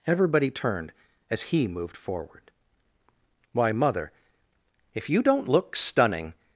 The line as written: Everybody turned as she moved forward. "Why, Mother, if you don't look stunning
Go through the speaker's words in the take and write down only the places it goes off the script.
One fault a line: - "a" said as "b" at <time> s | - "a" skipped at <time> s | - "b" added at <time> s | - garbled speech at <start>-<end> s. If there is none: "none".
- "she" said as "he" at 1.4 s